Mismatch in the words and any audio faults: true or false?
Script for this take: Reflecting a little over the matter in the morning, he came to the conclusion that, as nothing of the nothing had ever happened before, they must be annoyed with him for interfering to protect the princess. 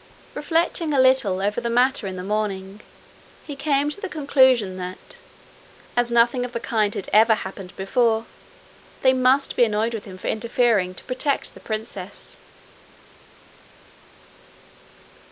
true